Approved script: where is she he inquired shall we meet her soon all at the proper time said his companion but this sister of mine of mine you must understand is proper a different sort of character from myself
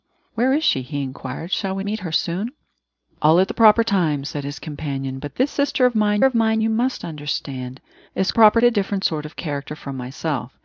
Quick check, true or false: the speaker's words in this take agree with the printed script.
true